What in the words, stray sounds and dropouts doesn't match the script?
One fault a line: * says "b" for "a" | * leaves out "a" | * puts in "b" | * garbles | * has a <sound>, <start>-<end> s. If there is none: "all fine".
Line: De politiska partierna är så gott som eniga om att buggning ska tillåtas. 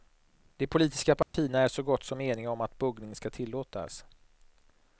* has a dropout, 1.2-1.3 s